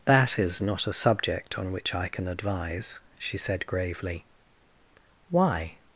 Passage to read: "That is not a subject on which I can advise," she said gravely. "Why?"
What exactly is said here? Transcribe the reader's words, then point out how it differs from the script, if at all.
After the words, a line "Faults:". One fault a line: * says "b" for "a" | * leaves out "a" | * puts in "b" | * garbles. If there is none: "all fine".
"That is not a subject on which I can advise," she said gravely. "Why?"
Faults:
all fine